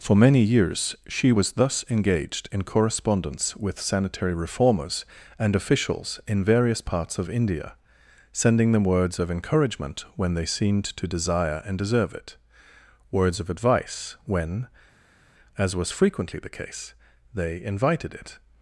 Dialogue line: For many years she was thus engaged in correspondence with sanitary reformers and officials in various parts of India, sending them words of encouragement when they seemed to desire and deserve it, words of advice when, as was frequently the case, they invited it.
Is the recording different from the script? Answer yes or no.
no